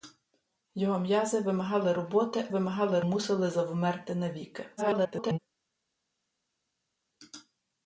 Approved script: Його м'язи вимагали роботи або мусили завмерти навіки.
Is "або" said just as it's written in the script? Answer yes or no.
no